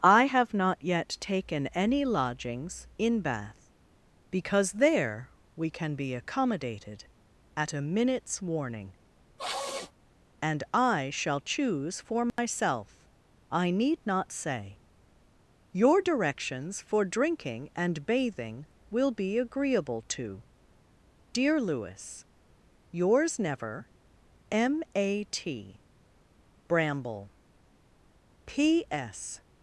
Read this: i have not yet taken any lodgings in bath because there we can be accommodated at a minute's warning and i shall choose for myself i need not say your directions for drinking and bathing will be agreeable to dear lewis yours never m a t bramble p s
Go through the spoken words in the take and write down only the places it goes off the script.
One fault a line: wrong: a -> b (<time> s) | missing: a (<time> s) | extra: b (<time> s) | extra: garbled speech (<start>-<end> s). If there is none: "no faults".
no faults